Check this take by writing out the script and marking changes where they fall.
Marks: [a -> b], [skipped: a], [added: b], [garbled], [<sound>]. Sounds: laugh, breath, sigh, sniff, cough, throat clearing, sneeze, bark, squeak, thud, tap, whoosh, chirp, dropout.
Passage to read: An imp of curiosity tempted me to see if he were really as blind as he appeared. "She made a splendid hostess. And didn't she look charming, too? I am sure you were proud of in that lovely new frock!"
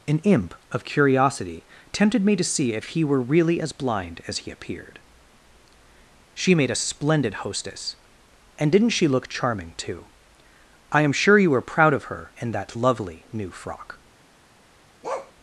An imp of curiosity tempted me to see if he were really as blind as he appeared. "She made a splendid hostess. And didn't she look charming, too? I am sure you were proud of [added: her] in that lovely new frock!" [bark]